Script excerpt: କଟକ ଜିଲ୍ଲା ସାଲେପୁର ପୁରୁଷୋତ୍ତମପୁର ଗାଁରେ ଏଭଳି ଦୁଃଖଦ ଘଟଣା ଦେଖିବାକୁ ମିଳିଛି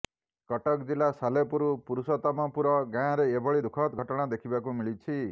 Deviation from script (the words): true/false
false